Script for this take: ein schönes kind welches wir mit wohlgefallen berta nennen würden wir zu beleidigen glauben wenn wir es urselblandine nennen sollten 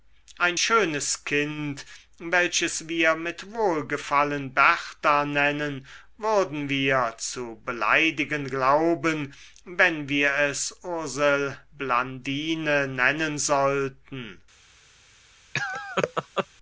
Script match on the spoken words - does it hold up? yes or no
yes